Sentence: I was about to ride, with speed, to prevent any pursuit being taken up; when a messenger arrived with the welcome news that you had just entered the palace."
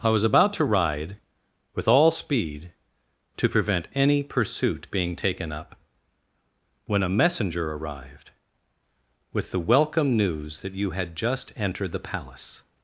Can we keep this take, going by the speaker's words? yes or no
no